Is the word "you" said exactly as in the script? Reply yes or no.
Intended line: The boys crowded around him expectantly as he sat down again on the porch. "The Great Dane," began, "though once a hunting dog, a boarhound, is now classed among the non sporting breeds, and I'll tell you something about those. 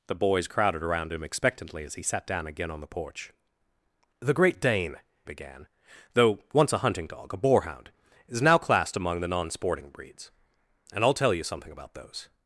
yes